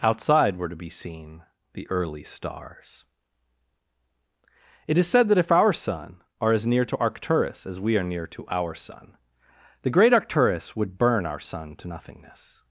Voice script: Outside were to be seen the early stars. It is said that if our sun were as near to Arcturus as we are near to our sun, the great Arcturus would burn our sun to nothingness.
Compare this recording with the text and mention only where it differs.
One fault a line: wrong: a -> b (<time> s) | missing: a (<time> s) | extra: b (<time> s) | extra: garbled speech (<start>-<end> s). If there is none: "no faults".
wrong: were -> are (6.4 s)